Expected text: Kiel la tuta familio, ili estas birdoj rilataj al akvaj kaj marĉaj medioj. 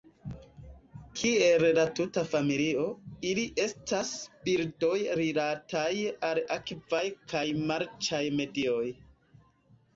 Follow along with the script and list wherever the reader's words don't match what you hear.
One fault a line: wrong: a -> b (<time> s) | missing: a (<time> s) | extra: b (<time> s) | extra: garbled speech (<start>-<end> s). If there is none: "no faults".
no faults